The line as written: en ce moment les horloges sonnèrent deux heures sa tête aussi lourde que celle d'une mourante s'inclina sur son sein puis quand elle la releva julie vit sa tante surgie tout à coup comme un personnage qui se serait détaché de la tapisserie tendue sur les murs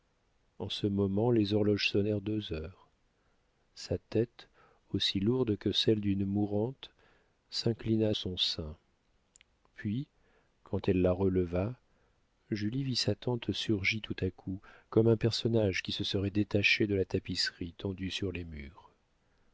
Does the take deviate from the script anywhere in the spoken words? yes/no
yes